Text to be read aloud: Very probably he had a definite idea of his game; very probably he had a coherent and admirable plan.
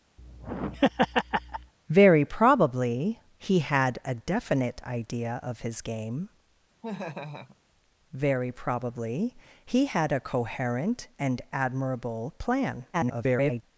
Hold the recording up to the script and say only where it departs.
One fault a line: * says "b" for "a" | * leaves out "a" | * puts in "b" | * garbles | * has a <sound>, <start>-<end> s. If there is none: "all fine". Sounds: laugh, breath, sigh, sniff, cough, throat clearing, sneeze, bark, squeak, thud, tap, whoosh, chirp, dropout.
* has a laugh, 0.2-1.7 s
* has a laugh, 6.8-7.6 s
* garbles